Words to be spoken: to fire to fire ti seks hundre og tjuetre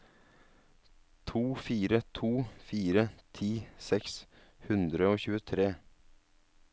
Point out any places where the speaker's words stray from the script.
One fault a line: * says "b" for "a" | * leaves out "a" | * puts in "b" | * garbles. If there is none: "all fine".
all fine